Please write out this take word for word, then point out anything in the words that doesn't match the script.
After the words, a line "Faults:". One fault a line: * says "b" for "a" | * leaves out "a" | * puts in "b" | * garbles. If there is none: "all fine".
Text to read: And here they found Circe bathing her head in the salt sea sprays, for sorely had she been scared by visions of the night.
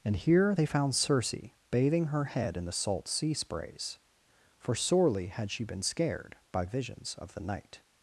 And here they found Circe bathing her head in the salt sea sprays, for sorely had she been scared by visions of the night.
Faults:
all fine